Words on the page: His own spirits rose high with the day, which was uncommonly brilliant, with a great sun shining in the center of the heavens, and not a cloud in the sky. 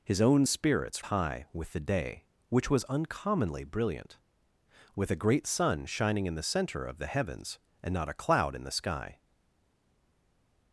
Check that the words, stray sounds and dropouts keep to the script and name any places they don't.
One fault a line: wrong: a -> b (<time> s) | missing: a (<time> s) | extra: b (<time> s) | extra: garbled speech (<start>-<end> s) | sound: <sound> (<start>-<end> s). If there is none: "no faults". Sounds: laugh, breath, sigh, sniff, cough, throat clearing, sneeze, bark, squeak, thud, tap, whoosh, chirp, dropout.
missing: rose (1.0 s)